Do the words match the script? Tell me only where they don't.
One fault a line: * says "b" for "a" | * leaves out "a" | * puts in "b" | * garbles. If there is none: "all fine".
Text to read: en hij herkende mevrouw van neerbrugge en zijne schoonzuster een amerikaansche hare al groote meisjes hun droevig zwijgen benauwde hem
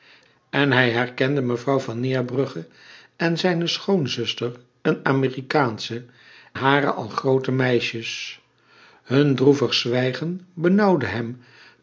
all fine